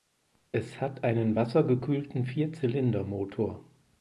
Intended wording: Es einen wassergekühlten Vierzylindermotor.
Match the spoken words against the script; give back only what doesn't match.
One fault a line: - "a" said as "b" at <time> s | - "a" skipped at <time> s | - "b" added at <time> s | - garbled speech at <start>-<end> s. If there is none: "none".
- "hat" added at 0.8 s